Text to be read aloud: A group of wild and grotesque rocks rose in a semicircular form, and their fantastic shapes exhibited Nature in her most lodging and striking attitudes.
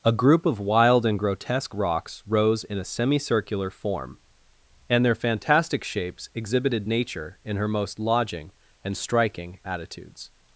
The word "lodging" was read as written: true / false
true